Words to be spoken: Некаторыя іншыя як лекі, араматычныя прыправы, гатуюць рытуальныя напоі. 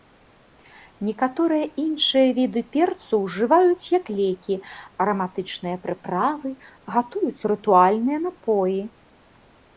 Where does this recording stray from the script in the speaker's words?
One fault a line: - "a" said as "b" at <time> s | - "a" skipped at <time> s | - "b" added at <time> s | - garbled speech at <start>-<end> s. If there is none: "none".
- "віды перцу ўжываюць" added at 2.4 s